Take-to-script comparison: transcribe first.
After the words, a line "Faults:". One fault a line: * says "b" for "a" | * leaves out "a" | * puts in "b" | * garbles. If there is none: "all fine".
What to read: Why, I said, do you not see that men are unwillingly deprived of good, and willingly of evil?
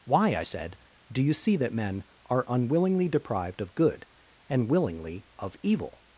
Why, I said, do you see that men are unwillingly deprived of good, and willingly of evil?
Faults:
* leaves out "not"